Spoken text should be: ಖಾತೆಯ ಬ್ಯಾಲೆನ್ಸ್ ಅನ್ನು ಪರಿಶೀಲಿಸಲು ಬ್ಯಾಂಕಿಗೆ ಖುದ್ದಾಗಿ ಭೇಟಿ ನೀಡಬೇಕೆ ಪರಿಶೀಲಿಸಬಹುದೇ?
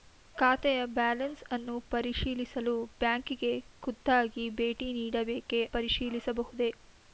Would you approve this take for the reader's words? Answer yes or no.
yes